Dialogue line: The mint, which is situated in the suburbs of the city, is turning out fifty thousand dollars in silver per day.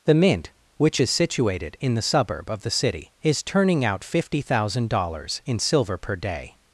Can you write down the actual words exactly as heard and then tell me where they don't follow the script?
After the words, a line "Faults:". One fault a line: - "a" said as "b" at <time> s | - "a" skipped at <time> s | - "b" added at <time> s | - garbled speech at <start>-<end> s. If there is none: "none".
The mint, which is situated in the suburb of the city, is turning out fifty thousand dollars in silver per day.
Faults:
- "suburbs" said as "suburb" at 2.0 s